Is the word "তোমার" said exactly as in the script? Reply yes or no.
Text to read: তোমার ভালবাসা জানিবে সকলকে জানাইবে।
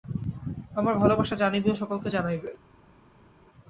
no